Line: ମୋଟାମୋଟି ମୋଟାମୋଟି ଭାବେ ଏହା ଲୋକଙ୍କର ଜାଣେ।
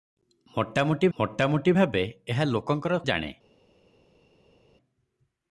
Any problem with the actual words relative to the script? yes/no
no